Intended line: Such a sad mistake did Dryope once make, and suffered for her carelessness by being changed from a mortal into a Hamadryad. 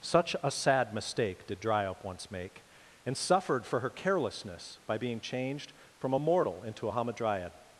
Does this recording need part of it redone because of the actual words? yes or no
no